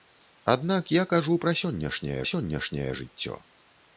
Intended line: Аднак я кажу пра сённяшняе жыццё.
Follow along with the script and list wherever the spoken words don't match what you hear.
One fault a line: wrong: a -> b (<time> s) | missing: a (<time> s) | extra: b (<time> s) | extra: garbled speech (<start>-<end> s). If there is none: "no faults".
extra: сённяшняе (2.3 s)